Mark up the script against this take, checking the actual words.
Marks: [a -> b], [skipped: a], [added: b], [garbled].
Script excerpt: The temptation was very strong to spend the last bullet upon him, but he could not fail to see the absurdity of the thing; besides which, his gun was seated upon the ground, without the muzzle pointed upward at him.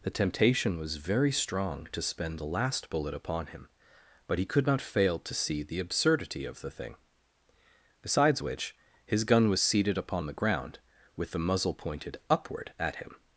The temptation was very strong to spend the last bullet upon him, but he could not fail to see the absurdity of the thing; besides which, his gun was seated upon the ground, [without -> with] the muzzle pointed upward at him.